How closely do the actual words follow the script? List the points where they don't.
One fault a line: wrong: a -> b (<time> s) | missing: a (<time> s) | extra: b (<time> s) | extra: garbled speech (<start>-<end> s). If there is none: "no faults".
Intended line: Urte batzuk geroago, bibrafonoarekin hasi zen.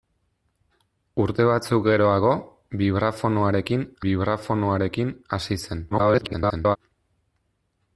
extra: bibrafonoarekin (4.1 s)
extra: garbled speech (5.9-6.8 s)